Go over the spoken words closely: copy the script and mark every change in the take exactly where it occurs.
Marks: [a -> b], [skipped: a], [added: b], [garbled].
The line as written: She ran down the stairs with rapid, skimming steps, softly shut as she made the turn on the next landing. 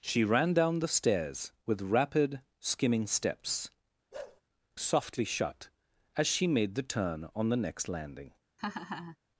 She ran down the stairs with rapid, skimming steps, softly shut as she made the turn on the next landing.